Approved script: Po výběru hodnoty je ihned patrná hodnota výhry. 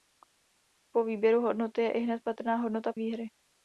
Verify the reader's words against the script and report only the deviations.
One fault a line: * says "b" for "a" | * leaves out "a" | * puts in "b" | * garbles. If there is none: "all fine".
all fine